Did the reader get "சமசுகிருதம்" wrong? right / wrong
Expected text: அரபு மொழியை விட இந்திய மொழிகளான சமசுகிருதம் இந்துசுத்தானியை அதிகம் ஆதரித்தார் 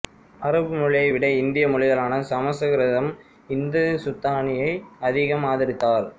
right